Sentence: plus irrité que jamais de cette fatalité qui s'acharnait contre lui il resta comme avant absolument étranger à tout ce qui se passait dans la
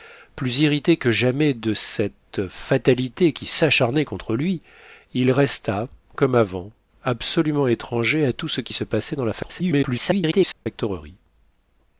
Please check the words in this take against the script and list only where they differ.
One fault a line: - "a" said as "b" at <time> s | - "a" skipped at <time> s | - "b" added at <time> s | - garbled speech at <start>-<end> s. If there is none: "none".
- garbled speech at 9.4-10.7 s